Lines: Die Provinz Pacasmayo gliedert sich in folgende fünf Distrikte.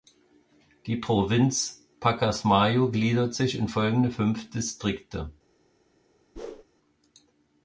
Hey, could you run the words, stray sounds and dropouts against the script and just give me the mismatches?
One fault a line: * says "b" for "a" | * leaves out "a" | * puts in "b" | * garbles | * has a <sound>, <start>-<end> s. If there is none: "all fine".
* has a whoosh, 6.4-6.6 s